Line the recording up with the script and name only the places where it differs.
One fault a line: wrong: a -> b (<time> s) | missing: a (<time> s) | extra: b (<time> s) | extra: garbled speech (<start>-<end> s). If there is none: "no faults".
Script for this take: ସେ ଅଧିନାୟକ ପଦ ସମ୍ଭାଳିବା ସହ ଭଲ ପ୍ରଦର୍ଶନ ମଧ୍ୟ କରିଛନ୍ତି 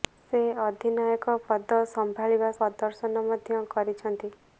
missing: ସହ ଭଲ (2.5 s)